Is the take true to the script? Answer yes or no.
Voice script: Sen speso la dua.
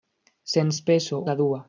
yes